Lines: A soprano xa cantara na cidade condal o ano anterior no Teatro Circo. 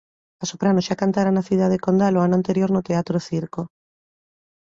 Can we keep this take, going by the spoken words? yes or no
yes